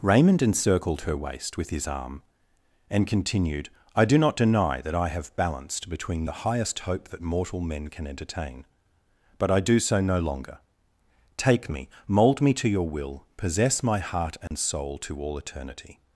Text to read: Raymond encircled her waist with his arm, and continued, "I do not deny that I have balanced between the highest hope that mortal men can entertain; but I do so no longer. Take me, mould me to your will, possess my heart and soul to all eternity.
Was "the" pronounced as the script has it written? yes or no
yes